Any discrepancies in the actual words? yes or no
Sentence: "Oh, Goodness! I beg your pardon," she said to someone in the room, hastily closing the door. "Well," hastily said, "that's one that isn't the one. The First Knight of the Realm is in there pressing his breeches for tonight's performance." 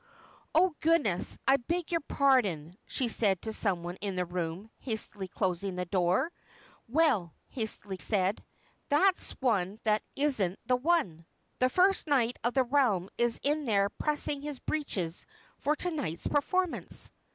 no